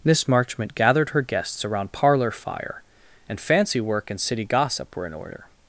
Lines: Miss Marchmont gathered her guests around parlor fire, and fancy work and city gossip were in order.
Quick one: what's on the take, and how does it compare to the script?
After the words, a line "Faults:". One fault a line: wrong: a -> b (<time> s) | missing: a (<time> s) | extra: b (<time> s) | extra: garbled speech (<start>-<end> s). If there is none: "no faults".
Miss Marchmont gathered her guests around parlor fire, and fancy work and city gossip were in order.
Faults:
no faults